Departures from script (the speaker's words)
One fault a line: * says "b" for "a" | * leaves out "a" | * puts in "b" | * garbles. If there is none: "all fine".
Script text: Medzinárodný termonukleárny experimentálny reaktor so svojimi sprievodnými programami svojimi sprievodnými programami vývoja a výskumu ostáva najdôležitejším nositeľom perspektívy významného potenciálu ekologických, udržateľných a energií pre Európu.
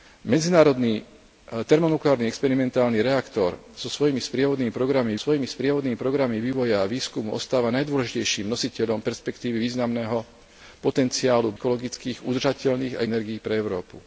all fine